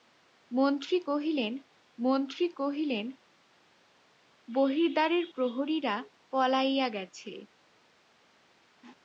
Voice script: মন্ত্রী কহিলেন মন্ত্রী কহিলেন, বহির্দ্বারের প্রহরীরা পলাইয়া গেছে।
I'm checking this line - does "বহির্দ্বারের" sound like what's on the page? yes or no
yes